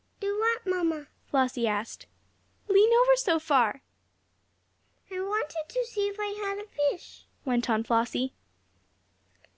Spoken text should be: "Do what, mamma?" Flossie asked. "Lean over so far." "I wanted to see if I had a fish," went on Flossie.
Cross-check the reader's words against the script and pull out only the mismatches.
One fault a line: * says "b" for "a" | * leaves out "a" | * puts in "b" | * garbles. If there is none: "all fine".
all fine